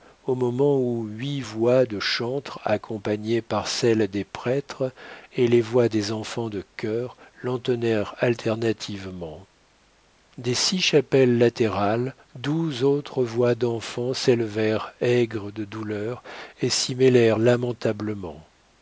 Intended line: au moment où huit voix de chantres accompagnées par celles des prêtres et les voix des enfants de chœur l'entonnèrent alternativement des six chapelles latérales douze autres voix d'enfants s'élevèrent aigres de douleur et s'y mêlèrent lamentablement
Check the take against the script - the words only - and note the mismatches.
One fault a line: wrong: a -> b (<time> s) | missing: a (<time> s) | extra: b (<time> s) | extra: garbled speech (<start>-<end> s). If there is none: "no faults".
no faults